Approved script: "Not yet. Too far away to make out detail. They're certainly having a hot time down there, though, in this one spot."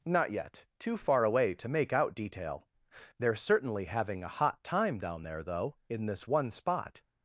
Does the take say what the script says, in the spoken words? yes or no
yes